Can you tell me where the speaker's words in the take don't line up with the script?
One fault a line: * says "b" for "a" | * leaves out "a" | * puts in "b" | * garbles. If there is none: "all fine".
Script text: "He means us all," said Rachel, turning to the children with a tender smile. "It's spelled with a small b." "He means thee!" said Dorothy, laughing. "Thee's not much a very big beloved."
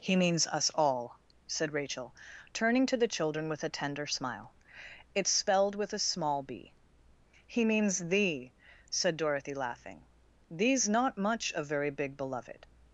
all fine